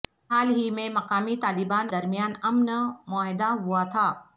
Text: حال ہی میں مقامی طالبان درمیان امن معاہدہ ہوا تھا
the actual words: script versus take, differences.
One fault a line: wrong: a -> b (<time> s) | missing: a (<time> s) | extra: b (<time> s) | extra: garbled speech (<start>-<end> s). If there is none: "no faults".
no faults